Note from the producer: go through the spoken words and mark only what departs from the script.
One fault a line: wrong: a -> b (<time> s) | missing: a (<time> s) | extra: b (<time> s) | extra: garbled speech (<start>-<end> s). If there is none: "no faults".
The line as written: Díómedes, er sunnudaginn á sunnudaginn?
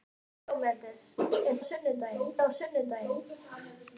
no faults